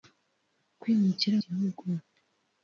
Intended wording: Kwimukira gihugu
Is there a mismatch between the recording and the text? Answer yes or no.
no